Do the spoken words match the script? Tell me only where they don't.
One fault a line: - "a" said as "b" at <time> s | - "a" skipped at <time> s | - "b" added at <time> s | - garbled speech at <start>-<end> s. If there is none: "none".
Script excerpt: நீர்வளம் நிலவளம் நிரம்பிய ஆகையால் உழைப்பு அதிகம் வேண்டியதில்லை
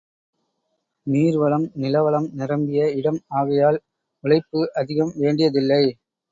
- "இடம்" added at 2.9 s